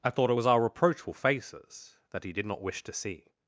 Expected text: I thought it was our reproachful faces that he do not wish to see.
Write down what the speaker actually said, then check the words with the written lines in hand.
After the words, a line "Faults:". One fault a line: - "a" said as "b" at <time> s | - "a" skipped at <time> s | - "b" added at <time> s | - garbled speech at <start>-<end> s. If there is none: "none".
I thought it was our reproachful faces that he did not wish to see.
Faults:
- "do" said as "did" at 2.3 s